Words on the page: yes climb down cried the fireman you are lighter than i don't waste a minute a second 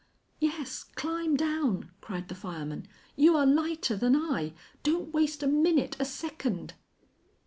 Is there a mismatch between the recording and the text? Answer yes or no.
no